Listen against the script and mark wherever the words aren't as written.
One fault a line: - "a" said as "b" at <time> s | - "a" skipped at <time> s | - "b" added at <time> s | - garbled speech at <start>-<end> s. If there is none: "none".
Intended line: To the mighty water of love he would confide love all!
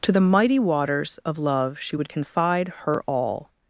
- "water" said as "waters" at 0.6 s
- "he" said as "she" at 1.8 s
- "love" said as "her" at 2.8 s